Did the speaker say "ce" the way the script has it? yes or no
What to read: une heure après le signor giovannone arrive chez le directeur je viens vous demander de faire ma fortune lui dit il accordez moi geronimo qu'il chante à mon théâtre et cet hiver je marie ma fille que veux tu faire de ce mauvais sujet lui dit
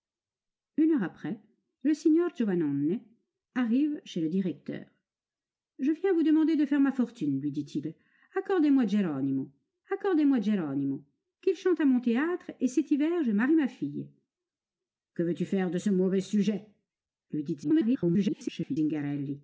yes